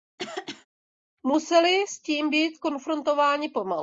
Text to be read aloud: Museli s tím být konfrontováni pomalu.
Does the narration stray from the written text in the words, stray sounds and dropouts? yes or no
yes